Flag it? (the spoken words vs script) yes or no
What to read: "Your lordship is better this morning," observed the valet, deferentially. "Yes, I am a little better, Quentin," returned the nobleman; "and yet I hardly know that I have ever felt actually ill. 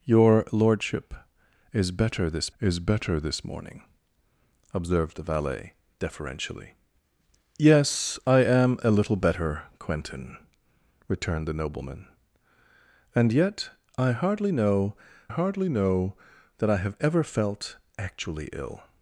yes